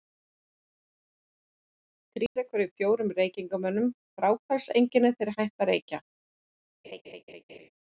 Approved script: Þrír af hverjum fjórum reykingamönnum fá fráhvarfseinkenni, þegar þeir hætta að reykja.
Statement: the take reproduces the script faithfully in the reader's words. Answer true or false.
false